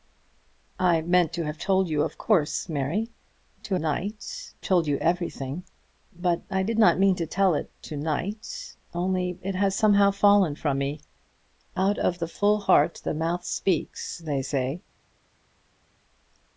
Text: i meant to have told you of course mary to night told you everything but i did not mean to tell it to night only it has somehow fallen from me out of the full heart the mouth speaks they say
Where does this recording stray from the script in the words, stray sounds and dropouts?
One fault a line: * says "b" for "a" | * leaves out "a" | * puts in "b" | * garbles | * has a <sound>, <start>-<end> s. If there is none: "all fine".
all fine